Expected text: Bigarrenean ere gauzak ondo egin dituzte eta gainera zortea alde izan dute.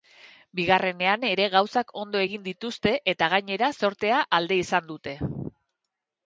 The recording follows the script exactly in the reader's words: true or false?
true